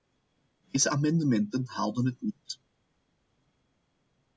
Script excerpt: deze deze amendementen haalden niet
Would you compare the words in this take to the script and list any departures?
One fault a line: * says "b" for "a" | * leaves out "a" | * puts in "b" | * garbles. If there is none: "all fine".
* leaves out "deze"
* puts in "het"